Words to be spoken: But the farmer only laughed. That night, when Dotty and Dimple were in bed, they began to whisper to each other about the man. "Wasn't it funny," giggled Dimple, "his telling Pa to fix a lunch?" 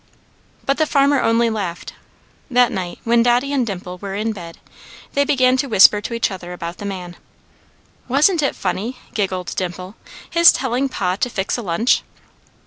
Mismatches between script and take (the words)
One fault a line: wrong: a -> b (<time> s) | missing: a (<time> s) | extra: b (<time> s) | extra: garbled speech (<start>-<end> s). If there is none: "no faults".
no faults